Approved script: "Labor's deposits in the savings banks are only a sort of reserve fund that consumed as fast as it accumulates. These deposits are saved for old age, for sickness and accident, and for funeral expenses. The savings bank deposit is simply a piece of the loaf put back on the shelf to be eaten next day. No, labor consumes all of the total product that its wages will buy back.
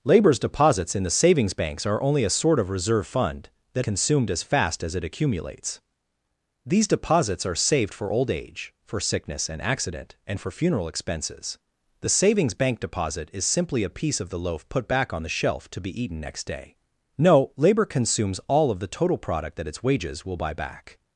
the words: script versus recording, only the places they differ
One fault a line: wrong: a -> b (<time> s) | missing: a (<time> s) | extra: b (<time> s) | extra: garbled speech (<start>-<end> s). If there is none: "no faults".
no faults